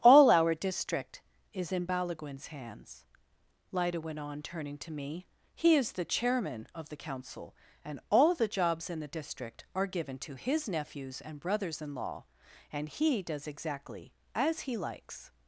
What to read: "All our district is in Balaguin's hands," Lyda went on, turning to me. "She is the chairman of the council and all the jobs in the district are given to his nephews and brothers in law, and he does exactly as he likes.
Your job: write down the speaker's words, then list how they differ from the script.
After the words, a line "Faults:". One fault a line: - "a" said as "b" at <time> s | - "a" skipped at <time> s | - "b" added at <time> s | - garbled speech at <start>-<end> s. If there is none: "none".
"All our district is in Balaguin's hands," Lyda went on, turning to me. "He is the chairman of the council and all the jobs in the district are given to his nephews and brothers in law, and he does exactly as he likes.
Faults:
- "She" said as "He" at 5.5 s